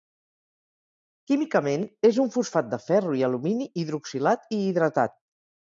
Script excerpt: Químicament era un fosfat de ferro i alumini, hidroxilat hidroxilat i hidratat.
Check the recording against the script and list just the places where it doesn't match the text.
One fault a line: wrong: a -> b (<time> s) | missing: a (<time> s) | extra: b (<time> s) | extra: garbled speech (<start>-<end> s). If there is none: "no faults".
wrong: era -> és (2.1 s)
missing: hidroxilat (4.5 s)